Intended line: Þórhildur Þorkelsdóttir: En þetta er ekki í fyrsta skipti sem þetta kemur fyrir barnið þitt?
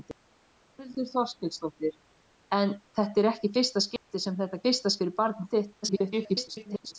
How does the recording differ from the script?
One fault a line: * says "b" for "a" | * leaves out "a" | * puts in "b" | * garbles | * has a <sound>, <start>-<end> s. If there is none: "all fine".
* has a dropout, 4.0-4.1 s
* says "fyrsta" for "kemur"
* garbles